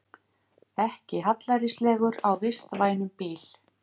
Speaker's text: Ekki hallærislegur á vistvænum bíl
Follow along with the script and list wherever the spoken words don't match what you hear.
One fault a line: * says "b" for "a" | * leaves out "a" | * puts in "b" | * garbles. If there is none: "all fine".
all fine